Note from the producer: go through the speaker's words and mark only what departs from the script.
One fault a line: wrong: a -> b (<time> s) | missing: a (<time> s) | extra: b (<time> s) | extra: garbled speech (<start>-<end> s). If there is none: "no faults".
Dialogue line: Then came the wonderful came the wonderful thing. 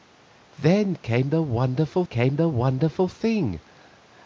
no faults